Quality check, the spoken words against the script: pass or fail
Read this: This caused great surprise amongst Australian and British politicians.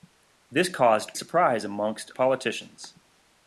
fail